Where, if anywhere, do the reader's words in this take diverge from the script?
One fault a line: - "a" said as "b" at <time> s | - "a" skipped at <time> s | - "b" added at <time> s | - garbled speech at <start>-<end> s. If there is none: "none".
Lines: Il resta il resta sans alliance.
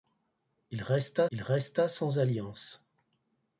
none